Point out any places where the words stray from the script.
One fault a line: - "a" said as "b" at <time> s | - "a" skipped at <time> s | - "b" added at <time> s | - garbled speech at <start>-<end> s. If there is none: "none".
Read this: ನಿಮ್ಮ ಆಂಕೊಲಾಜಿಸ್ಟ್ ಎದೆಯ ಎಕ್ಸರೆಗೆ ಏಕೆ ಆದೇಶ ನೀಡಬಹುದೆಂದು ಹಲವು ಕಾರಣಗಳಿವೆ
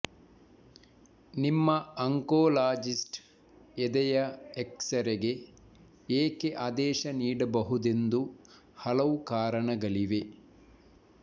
none